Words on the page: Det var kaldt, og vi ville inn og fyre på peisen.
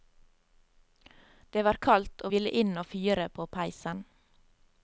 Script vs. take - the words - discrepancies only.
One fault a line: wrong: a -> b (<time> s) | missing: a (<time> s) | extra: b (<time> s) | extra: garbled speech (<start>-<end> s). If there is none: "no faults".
missing: vi (2.3 s)